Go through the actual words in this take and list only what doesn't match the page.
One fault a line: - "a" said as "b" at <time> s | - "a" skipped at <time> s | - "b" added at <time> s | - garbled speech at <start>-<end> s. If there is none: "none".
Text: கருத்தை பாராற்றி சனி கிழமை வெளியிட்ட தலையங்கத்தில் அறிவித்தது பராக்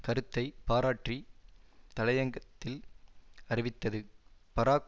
- "சனி கிழமை வெளியிட்ட" skipped at 1.2 s